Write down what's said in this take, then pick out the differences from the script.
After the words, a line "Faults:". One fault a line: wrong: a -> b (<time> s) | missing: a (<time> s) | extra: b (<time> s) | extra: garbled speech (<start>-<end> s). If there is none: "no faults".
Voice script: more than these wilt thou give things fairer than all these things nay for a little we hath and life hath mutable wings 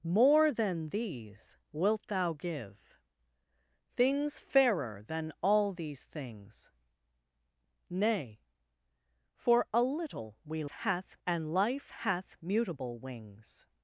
more than these wilt thou give things fairer than all these things nay for a little we hath and life hath mutable wings
Faults:
no faults